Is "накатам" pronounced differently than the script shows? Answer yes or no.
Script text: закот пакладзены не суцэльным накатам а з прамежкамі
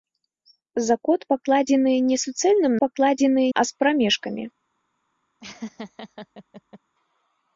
yes